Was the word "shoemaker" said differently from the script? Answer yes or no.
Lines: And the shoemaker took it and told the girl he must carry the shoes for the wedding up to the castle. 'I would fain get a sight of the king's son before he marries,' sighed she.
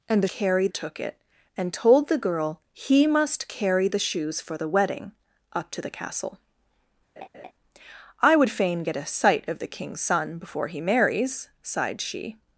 yes